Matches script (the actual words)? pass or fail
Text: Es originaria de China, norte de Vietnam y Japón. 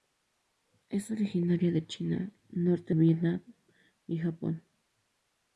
fail